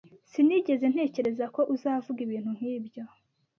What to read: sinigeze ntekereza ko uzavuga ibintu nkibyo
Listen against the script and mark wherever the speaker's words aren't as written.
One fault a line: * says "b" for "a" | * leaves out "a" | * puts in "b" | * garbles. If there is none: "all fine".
all fine